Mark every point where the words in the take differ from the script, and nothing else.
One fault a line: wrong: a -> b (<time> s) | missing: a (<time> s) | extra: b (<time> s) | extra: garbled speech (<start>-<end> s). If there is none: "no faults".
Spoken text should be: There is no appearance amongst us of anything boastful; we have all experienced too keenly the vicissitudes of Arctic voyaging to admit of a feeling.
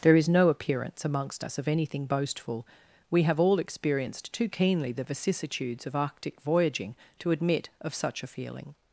extra: such (7.9 s)